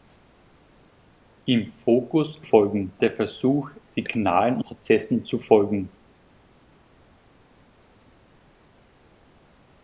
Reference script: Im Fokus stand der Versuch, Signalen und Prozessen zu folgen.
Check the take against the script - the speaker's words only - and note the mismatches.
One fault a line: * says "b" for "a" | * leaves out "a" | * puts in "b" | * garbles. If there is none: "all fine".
* says "folgen" for "stand"
* leaves out "und"